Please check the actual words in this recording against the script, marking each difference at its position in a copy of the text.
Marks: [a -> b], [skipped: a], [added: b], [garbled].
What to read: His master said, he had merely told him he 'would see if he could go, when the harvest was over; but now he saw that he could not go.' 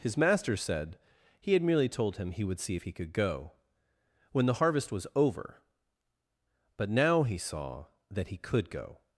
His master said, he had merely told him he 'would see if he could go, when the harvest was over; but now he saw that he could [skipped: not] go.'